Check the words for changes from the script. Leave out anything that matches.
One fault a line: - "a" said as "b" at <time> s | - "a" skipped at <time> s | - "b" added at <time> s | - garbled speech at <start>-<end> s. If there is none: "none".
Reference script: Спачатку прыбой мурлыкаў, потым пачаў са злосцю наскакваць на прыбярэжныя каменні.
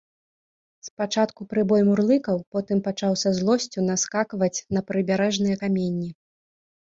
none